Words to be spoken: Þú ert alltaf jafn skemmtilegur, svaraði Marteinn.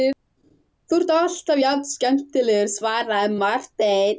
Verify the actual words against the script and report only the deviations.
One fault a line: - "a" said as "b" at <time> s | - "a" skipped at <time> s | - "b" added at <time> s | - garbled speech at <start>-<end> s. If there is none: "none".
none